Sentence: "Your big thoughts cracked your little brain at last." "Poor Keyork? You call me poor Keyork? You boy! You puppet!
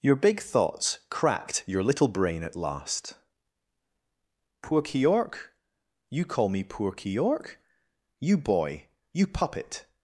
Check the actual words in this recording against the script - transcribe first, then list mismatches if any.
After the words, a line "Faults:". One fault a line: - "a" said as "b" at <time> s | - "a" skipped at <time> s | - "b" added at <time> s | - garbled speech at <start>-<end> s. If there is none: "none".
"Your big thoughts cracked your little brain at last." "Poor Keyork? You call me poor Keyork? You boy! You puppet!
Faults:
none